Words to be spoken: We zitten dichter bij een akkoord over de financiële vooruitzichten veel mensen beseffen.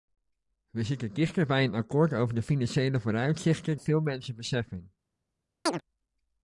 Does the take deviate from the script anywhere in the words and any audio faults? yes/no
yes